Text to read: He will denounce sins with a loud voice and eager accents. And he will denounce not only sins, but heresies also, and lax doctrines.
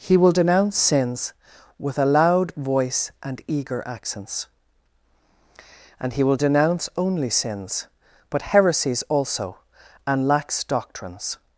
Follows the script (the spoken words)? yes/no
no